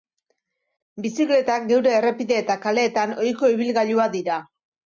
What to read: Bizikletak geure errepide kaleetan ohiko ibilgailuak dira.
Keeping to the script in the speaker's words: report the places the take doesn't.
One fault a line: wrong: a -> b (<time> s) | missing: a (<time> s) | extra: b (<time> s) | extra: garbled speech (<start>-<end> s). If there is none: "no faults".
extra: eta (2.4 s)